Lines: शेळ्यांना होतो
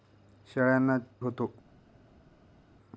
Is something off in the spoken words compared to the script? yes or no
no